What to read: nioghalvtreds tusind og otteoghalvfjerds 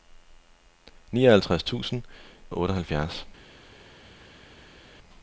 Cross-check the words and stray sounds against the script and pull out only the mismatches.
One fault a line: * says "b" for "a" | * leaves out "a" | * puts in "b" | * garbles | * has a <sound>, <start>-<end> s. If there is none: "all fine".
all fine